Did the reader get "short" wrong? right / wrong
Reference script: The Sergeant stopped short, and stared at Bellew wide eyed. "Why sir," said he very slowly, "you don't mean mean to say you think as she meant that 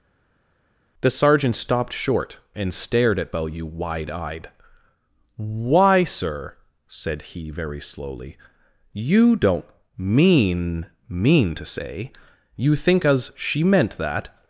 right